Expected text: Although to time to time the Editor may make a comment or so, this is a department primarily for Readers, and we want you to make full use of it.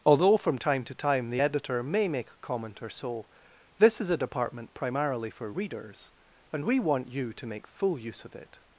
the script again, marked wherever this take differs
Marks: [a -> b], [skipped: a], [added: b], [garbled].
Although [to -> from] time to time the Editor may make a comment or so, this is a department primarily for Readers, and we want you to make full use of it.